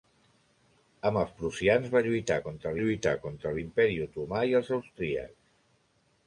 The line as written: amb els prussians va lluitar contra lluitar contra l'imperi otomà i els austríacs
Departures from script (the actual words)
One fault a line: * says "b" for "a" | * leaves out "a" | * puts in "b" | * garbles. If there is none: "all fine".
all fine